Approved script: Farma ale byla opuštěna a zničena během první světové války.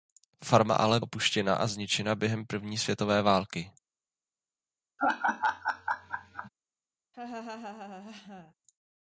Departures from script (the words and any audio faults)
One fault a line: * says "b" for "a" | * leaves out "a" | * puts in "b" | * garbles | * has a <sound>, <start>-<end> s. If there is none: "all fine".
* leaves out "byla"
* has a laugh, 5.0-6.5 s
* has a laugh, 7.1-8.5 s